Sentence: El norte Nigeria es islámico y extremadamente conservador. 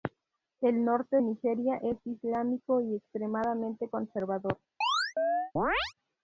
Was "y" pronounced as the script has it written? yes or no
yes